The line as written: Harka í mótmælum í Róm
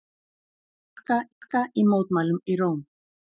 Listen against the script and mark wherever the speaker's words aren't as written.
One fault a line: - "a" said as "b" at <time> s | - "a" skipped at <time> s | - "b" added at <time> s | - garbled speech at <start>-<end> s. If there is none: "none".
- "harka" added at 1.4 s